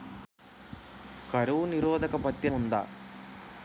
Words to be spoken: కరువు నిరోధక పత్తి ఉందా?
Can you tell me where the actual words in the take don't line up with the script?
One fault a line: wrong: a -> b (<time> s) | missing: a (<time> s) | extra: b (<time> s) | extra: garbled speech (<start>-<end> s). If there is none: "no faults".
no faults